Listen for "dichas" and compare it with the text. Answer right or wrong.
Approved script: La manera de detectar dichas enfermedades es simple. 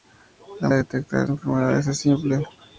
wrong